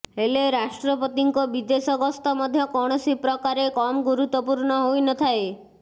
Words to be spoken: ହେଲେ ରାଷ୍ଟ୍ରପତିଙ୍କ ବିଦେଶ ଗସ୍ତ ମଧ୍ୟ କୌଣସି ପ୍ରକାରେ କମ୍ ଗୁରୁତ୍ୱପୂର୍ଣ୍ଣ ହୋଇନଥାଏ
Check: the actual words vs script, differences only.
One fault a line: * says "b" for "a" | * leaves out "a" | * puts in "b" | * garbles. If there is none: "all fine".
all fine